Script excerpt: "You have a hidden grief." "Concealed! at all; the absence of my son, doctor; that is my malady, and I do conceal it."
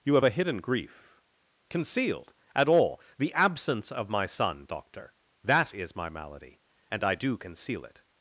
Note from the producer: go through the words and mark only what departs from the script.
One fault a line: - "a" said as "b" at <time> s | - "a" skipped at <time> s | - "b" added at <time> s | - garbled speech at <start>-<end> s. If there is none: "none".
none